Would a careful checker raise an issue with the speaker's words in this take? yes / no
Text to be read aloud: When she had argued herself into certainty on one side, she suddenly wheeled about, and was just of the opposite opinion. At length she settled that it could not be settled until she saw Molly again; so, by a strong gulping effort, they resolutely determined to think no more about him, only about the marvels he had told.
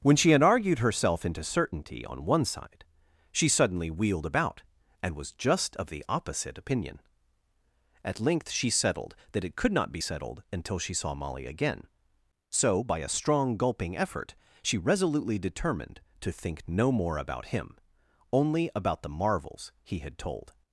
yes